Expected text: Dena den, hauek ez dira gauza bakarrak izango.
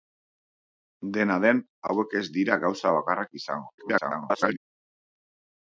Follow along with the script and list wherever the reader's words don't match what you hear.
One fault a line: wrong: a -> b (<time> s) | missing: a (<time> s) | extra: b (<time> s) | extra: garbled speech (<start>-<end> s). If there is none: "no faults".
extra: garbled speech (3.8-4.6 s)